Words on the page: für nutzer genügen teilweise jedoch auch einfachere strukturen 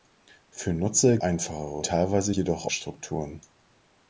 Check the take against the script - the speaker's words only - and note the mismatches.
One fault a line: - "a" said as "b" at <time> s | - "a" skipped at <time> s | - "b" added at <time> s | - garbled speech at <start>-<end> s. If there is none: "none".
- "genügen" said as "einfachere" at 1.2 s
- "auch einfachere" skipped at 2.7 s